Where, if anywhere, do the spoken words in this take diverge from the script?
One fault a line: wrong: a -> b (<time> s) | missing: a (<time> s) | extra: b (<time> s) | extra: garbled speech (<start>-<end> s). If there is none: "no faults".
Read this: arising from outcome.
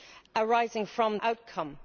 no faults